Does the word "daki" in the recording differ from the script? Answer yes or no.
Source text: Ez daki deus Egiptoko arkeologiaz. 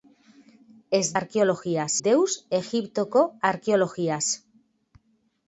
yes